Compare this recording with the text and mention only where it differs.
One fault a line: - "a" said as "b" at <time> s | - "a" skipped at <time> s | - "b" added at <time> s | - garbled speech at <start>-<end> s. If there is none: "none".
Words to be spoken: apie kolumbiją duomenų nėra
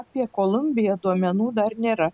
- "dar" added at 1.6 s